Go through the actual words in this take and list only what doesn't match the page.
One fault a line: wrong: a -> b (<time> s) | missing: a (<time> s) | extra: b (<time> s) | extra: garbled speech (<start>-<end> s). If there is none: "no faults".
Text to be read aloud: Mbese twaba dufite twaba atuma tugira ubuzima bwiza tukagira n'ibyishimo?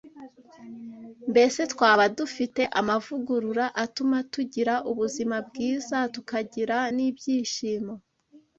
wrong: twaba -> amavugurura (2.8 s)